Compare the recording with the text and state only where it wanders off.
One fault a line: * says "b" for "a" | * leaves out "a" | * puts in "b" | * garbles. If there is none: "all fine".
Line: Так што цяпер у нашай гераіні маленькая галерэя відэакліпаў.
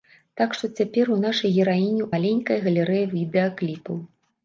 all fine